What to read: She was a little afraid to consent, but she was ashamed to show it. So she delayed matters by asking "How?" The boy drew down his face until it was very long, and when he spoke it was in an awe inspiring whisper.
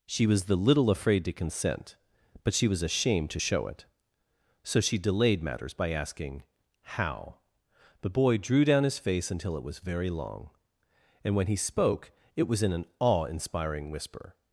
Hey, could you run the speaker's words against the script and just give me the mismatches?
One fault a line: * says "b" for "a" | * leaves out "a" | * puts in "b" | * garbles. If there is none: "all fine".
* says "the" for "a"